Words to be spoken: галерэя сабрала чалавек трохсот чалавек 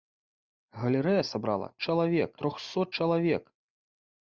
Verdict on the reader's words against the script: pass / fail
pass